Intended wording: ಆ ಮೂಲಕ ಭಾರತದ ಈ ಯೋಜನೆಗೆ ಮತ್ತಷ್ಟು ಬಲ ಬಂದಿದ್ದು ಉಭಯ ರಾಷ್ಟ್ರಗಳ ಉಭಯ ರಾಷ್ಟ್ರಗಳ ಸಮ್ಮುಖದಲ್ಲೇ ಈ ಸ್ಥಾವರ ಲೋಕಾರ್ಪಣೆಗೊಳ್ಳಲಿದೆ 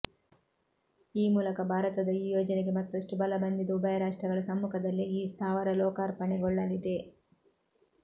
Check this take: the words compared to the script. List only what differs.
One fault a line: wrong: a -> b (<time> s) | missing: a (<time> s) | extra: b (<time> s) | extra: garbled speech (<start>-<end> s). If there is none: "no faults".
wrong: ಆ -> ಈ (1.1 s)
missing: ಉಭಯ ರಾಷ್ಟ್ರಗಳ (4.4 s)